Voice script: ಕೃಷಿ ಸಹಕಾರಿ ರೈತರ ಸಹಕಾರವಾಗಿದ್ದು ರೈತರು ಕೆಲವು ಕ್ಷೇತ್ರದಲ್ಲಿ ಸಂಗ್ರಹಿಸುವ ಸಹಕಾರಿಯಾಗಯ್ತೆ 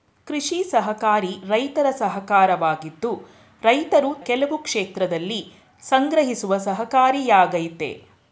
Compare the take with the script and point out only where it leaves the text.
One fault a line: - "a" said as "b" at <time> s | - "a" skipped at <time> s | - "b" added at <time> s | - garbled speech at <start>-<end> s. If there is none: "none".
none